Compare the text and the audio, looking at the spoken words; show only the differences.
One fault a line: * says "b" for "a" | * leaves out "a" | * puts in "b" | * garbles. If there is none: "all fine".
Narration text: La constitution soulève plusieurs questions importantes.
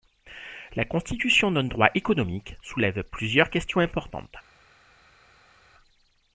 * puts in "d'un droit économique"